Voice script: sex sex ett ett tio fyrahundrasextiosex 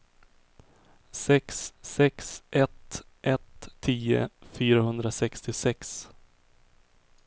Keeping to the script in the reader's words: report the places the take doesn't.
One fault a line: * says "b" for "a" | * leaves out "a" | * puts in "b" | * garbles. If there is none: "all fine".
all fine